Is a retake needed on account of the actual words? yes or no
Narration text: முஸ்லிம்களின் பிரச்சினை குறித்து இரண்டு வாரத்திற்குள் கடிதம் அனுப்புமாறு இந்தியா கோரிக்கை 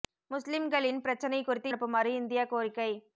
yes